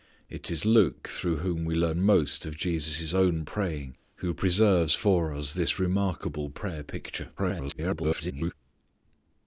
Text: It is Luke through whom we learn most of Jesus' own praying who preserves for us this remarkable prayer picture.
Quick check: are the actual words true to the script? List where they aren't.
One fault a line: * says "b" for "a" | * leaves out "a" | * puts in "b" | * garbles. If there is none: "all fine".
* garbles